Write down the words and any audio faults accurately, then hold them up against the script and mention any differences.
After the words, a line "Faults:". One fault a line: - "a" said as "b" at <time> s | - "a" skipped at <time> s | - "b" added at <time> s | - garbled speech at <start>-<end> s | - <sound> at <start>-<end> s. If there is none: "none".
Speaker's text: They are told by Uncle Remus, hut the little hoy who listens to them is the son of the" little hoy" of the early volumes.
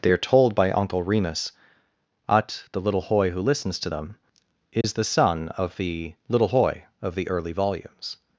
They are told by Uncle Remus, ut the little hoy who listens to them is the son of the" little hoy" of the early volumes.
Faults:
- "hut" said as "ut" at 2.3 s
- dropout at 4.8-4.8 s